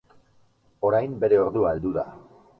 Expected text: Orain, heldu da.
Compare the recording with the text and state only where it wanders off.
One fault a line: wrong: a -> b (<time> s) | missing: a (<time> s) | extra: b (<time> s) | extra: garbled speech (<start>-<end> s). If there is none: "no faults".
extra: bere ordua (1.2 s)